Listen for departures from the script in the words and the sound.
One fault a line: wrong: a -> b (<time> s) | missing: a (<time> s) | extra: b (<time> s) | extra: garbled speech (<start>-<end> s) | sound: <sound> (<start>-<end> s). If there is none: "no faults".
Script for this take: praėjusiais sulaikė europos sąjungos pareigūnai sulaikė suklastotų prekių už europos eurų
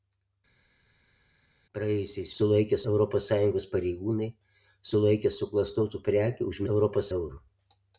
no faults